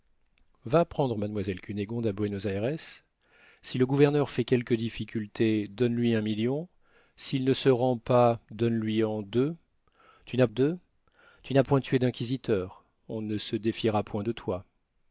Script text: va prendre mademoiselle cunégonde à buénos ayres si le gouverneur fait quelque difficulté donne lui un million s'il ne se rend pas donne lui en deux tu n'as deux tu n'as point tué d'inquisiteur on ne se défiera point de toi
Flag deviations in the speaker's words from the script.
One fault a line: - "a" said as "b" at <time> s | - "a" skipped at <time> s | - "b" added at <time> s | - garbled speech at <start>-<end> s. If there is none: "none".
none